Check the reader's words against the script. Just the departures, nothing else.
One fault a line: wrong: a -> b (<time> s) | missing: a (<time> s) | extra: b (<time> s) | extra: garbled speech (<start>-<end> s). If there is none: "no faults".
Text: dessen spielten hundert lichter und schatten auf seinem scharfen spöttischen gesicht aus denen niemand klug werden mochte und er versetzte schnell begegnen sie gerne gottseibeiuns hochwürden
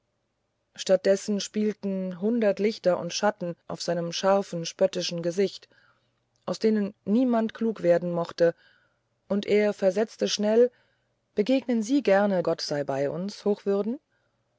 no faults